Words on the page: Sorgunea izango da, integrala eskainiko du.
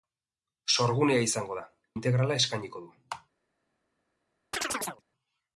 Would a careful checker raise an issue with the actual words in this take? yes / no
no